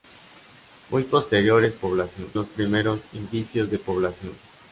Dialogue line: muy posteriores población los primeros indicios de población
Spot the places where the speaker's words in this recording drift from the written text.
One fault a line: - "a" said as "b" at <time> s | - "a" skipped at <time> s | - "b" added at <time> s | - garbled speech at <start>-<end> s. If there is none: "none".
none